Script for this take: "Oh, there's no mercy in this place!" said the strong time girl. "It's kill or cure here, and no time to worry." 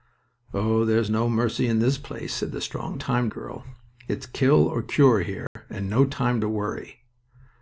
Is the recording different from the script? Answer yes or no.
no